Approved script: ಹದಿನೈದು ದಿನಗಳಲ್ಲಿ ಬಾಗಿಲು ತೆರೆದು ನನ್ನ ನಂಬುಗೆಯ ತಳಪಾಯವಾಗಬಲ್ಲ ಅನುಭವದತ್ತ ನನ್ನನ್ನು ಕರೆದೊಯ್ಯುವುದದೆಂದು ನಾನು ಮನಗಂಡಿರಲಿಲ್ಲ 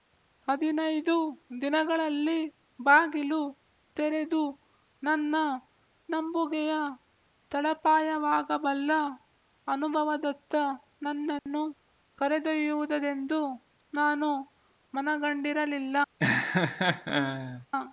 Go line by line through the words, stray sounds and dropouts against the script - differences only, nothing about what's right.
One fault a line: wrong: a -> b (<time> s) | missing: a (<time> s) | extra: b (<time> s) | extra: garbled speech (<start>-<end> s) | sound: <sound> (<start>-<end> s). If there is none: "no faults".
sound: dropout (11.4-11.5 s)
sound: laugh (16.2-17.7 s)